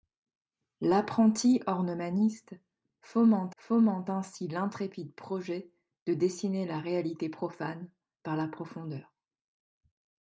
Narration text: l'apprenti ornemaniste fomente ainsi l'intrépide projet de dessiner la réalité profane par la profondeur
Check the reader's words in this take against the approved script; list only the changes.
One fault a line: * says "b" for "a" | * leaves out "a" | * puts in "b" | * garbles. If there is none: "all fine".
* puts in "fomente"